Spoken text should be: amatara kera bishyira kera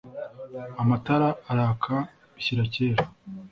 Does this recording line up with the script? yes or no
no